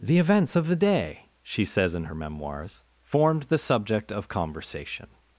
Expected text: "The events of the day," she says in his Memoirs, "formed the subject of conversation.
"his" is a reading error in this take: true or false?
true